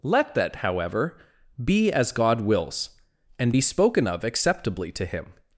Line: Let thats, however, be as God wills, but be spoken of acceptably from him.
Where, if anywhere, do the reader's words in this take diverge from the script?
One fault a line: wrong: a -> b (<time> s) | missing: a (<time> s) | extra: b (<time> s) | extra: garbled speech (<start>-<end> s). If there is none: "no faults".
wrong: thats -> that (0.3 s)
wrong: but -> and (3.4 s)
wrong: from -> to (4.9 s)